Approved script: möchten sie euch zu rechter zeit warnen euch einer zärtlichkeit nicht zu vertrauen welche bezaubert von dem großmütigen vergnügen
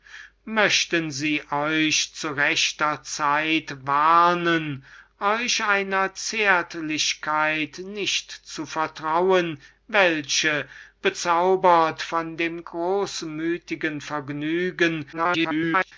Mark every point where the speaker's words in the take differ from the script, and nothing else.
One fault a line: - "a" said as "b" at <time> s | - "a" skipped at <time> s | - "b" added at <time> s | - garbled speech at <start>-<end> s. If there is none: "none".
- garbled speech at 15.1-15.9 s